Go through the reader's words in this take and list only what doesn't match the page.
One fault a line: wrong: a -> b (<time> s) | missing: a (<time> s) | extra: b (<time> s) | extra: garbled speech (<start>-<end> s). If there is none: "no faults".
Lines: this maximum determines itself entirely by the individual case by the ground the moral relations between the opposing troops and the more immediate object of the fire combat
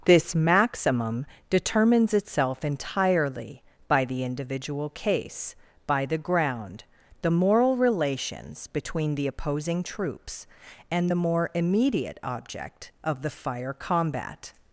no faults